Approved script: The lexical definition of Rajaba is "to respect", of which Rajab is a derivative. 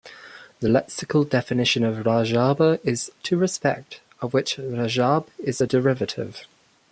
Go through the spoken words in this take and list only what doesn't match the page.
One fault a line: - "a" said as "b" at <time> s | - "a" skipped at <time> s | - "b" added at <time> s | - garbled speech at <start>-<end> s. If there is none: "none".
none